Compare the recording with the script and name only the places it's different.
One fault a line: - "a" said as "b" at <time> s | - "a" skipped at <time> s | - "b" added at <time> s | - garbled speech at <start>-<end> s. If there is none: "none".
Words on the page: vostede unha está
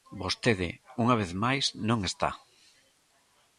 - "vez máis non" added at 1.2 s